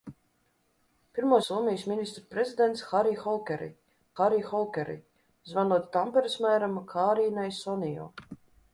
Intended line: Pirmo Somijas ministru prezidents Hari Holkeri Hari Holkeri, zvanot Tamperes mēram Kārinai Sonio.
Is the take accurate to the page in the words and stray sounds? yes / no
yes